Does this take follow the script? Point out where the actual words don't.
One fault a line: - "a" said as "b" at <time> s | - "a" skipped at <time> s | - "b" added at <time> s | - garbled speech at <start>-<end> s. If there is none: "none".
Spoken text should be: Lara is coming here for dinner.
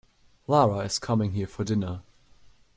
none